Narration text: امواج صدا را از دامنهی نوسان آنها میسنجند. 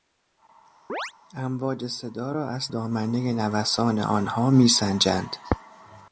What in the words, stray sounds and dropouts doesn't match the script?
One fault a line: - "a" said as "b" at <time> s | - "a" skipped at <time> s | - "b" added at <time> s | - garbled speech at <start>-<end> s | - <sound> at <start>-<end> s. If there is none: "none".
- chirp at 0.9-1.1 s